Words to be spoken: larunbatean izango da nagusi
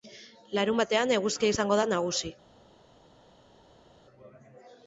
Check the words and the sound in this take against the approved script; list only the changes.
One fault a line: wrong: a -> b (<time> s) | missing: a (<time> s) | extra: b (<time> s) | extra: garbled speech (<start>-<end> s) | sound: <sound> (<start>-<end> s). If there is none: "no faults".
extra: eguzkia (1.2 s)